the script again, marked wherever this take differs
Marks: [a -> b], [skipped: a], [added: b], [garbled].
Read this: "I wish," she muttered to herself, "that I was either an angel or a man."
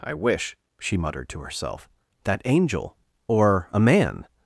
"I wish," she muttered to herself, "that [skipped: I was either an] angel or a man."